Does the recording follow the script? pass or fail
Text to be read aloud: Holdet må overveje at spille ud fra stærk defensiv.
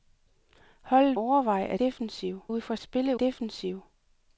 fail